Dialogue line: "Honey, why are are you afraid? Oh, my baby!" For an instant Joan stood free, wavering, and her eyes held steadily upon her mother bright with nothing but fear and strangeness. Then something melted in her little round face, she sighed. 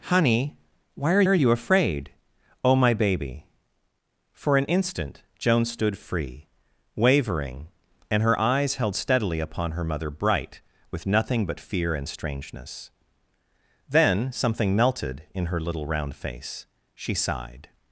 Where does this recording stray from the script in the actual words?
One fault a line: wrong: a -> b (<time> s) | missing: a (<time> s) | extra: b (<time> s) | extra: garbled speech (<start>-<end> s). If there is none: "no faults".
no faults